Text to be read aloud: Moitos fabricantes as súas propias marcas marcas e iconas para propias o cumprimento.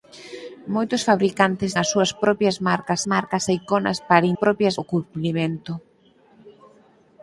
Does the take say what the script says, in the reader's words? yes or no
yes